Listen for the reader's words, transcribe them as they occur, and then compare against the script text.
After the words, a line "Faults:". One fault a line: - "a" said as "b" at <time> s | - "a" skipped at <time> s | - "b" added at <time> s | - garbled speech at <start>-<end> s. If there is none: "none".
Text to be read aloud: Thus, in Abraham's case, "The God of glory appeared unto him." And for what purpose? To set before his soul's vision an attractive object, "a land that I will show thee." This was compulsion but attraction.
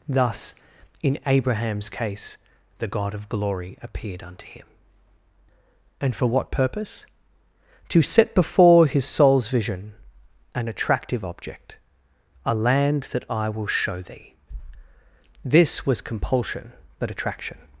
Thus, in Abraham's case, "The God of glory appeared unto him." And for what purpose? To set before his soul's vision an attractive object, "a land that I will show thee." This was compulsion but attraction.
Faults:
none